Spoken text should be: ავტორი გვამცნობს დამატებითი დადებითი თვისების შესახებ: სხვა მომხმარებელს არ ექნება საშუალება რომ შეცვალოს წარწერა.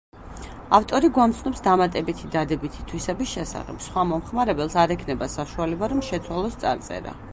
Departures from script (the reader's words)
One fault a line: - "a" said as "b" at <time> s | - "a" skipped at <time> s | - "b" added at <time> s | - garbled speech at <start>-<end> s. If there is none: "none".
none